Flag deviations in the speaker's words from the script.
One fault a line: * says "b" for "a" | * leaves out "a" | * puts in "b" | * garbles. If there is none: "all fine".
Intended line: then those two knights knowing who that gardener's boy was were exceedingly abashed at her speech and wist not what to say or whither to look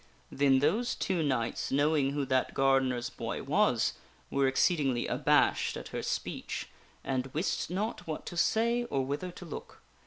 all fine